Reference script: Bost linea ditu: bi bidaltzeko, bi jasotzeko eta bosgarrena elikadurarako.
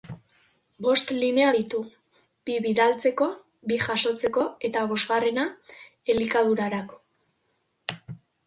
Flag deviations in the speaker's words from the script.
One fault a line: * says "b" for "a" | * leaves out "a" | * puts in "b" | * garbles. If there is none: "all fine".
all fine